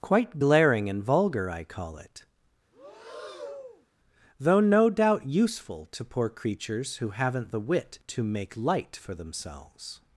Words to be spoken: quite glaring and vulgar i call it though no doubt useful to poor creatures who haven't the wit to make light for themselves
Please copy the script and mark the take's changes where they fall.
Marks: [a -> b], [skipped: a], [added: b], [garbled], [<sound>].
quite glaring and vulgar i call it [breath] though no doubt useful to poor creatures who haven't the wit to make light for themselves